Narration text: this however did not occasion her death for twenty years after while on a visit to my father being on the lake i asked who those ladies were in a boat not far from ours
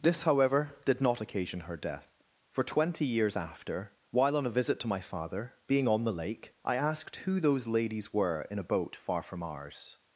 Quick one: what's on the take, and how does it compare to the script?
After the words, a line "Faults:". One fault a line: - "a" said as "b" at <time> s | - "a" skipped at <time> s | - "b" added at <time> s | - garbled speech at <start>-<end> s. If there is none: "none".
this however did not occasion her death for twenty years after while on a visit to my father being on the lake i asked who those ladies were in a boat far from ours
Faults:
- "not" skipped at 8.9 s